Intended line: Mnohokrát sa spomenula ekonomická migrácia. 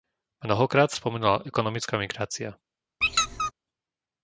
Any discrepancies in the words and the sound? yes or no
yes